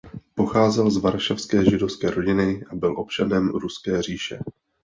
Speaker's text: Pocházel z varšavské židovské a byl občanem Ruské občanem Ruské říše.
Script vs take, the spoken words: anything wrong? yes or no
yes